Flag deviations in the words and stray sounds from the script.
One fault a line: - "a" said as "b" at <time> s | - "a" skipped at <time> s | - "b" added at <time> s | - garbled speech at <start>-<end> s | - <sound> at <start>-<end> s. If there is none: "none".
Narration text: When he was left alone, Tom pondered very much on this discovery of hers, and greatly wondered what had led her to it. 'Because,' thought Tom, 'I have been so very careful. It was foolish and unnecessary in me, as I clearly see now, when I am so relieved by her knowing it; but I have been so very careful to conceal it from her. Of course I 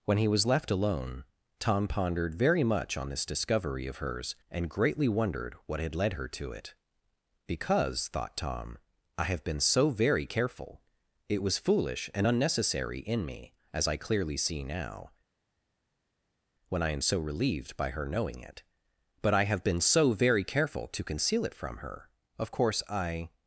none